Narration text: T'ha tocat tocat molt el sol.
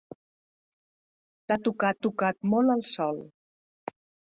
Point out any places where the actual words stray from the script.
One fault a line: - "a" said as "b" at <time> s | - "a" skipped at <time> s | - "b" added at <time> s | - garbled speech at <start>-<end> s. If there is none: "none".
none